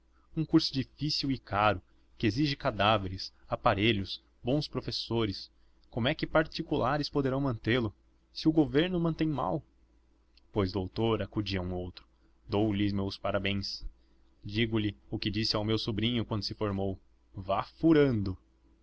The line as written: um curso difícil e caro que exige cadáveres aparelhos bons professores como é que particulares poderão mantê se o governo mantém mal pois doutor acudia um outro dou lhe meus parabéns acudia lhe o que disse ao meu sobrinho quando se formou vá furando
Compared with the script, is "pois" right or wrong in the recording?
right